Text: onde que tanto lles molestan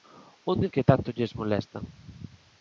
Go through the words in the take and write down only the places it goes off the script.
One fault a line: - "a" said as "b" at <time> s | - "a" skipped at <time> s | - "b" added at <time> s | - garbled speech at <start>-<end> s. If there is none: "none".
none